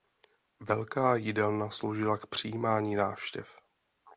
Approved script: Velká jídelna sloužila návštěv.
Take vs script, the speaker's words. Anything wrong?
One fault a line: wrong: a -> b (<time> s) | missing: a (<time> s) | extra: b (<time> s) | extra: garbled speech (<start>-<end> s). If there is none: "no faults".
extra: k přijímání (2.2 s)